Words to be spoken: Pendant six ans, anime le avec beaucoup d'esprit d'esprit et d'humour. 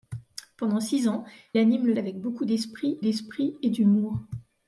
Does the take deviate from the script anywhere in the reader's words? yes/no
no